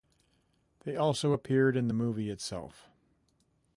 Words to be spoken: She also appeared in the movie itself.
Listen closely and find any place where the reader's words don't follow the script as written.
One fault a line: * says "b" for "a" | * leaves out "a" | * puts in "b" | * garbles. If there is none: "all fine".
* says "They" for "She"